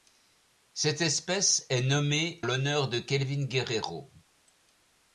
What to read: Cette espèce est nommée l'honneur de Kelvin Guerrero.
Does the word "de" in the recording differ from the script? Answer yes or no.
no